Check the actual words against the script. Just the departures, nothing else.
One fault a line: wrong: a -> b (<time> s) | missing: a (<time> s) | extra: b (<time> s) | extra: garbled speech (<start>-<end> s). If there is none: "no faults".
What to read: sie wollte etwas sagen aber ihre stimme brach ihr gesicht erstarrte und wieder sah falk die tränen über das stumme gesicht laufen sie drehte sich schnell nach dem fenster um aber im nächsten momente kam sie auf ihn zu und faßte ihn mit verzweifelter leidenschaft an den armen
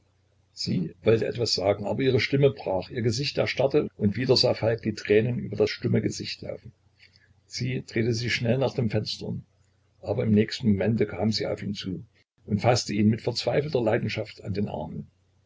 no faults